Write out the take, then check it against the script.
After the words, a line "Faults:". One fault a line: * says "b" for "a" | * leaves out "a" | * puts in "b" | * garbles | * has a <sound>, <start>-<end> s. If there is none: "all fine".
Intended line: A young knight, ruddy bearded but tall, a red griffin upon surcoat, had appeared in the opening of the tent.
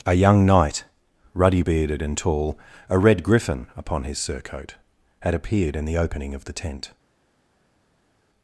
A young knight, ruddy bearded and tall, a red griffin upon his surcoat, had appeared in the opening of the tent.
Faults:
* says "and" for "but"
* puts in "his"